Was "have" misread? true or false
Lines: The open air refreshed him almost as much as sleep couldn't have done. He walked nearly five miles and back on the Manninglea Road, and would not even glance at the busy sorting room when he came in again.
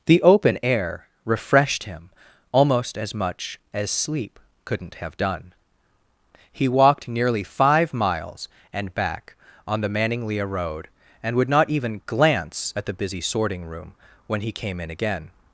false